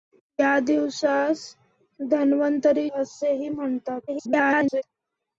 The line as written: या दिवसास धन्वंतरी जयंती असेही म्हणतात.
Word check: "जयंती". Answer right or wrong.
wrong